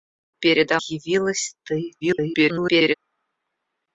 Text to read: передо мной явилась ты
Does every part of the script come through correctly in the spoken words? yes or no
no